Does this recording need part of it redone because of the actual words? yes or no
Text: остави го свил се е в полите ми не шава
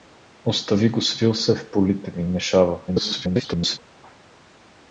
yes